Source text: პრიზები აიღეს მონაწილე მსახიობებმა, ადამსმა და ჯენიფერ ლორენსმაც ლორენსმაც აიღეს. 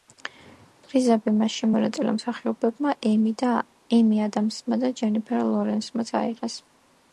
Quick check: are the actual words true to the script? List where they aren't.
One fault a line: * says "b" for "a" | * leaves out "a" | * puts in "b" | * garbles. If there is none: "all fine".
* says "მასში" for "აიღეს"
* puts in "ემი"
* leaves out "ლორენსმაც"